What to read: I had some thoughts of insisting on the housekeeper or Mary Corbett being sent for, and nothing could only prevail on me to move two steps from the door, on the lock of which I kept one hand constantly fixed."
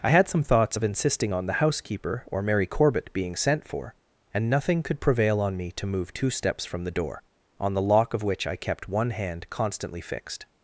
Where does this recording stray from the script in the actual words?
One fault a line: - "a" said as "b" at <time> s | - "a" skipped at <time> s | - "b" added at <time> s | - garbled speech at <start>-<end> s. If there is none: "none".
- "only" skipped at 5.0 s